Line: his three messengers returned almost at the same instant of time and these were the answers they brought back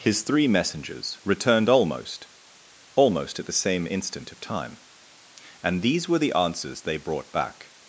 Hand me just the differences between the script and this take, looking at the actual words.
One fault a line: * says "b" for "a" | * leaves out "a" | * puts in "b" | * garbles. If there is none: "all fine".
* puts in "almost"